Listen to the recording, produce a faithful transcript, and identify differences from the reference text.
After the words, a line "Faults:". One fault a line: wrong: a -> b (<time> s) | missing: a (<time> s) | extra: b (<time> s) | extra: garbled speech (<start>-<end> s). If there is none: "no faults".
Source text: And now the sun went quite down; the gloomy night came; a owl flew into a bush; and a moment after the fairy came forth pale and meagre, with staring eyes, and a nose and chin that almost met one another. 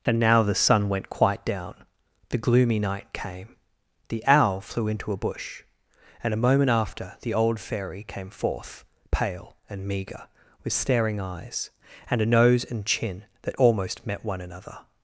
And now the sun went quite down; the gloomy night came; the owl flew into a bush; and a moment after the old fairy came forth pale and meagre, with staring eyes, and a nose and chin that almost met one another.
Faults:
wrong: a -> the (4.1 s)
extra: old (7.3 s)